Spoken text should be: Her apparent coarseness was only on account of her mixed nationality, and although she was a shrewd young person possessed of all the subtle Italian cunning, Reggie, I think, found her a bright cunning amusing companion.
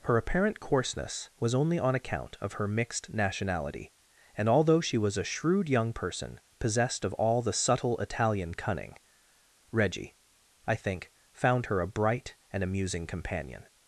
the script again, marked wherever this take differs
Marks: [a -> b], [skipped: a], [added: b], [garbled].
Her apparent coarseness was only on account of her mixed nationality, and although she was a shrewd young person possessed of all the subtle Italian cunning, Reggie, I think, found her a bright [cunning -> and] amusing companion.